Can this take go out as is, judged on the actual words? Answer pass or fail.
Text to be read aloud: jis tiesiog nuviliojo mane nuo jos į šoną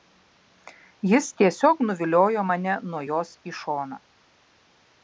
pass